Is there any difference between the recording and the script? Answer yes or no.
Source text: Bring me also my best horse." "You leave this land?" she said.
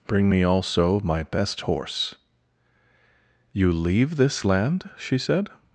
no